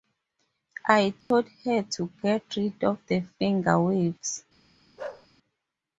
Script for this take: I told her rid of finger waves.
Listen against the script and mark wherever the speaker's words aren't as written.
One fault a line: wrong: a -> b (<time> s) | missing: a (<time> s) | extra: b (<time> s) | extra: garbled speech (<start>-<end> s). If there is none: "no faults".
extra: to get (1.8 s)
extra: the (3.1 s)